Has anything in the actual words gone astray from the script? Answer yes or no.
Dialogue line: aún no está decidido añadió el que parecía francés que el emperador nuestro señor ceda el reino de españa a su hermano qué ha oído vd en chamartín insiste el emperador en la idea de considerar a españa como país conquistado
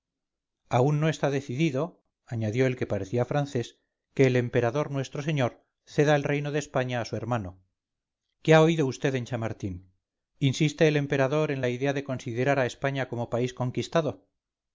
no